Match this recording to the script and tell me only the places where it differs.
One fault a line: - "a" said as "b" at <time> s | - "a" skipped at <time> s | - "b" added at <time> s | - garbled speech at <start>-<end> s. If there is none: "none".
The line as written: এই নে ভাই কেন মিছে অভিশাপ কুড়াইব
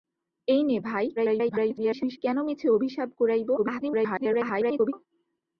- garbled speech at 1.2-2.2 s
- garbled speech at 3.6-4.9 s